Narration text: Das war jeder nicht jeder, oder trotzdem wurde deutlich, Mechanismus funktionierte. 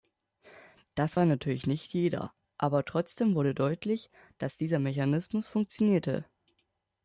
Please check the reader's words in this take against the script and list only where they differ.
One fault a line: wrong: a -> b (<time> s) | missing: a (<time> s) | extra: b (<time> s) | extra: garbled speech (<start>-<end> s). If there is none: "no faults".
wrong: jeder -> natürlich (1.2 s)
wrong: oder -> aber (2.6 s)
extra: dass dieser (4.4 s)